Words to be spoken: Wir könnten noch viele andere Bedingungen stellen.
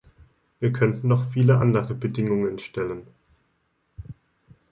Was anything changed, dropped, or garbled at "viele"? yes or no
no